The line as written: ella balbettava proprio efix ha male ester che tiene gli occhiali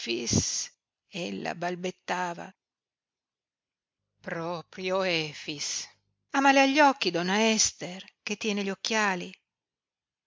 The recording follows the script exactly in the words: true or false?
false